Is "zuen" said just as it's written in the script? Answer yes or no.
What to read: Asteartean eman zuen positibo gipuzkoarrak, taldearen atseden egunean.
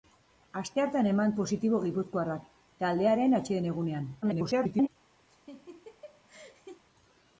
no